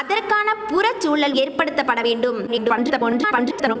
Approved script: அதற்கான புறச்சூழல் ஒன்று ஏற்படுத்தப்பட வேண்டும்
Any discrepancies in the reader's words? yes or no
yes